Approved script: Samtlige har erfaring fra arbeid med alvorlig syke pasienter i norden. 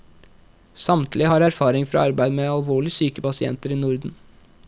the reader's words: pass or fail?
pass